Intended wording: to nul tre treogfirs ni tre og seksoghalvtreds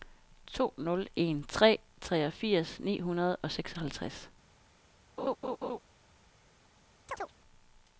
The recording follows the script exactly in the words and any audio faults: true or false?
false